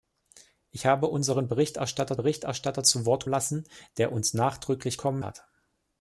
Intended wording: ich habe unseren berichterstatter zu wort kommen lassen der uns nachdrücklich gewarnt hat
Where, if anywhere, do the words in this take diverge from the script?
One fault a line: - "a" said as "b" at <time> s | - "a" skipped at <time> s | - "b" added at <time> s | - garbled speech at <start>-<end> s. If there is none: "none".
- "berichterstatter" added at 2.1 s
- "kommen" skipped at 3.2 s
- "gewarnt" said as "kommen" at 5.0 s